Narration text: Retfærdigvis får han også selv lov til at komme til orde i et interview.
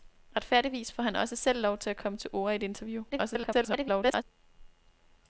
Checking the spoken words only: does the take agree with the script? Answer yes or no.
no